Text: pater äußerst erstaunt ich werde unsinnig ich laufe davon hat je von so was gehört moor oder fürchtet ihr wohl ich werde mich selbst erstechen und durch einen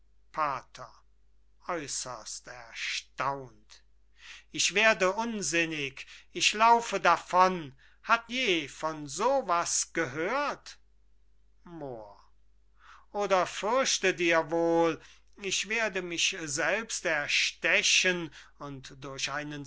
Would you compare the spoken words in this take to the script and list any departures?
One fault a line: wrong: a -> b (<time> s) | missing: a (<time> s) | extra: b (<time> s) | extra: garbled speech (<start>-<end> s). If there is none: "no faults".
no faults